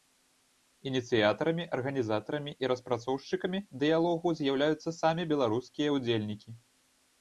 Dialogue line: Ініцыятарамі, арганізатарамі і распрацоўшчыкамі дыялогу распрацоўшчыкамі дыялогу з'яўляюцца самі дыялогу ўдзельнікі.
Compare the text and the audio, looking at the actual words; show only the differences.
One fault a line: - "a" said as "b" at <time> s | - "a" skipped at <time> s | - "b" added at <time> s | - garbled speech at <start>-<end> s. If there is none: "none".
- "распрацоўшчыкамі дыялогу" skipped at 4.3 s
- "дыялогу" said as "беларускія" at 5.4 s